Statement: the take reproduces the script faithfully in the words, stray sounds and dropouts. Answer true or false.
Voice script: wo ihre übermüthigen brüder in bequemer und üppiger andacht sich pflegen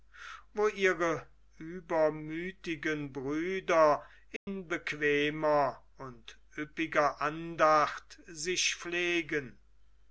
false